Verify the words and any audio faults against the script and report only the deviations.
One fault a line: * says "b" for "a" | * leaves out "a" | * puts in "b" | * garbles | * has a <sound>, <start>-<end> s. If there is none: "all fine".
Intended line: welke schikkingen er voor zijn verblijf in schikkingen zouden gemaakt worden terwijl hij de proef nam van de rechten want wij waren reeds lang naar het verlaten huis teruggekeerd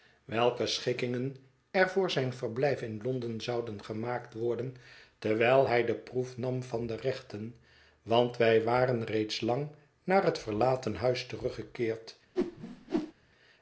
* says "londen" for "schikkingen"
* has a whoosh, 12.4-13.1 s